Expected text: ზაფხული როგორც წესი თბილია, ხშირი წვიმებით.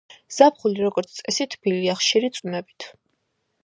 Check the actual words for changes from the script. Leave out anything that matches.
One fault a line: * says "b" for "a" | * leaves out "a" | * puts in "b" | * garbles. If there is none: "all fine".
all fine